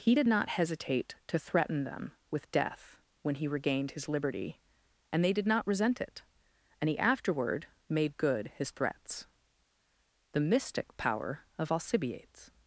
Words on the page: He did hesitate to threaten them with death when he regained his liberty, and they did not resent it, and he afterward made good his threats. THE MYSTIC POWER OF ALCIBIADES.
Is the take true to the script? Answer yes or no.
no